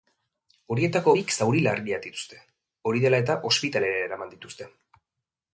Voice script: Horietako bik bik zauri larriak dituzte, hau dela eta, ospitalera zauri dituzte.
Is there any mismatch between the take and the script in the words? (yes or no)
yes